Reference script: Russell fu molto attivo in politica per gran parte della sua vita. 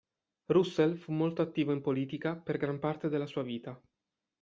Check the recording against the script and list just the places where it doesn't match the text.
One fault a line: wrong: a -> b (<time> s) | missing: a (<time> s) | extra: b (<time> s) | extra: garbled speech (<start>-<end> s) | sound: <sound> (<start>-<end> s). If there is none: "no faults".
no faults